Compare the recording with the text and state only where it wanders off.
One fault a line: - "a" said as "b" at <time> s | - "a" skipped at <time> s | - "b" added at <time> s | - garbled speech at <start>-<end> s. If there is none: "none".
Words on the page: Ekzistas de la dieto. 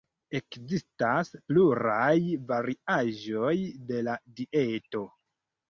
- "pluraj variaĵoj" added at 1.5 s